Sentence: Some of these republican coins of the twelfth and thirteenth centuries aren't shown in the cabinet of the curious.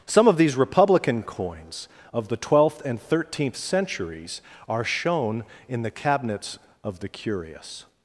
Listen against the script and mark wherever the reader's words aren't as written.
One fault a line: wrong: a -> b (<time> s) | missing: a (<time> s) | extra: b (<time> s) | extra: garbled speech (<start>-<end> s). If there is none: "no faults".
wrong: aren't -> are (4.7 s)
wrong: cabinet -> cabinets (5.9 s)